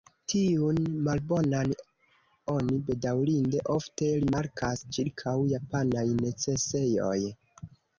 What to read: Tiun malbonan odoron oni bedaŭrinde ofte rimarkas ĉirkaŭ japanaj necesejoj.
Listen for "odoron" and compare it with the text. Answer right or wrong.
wrong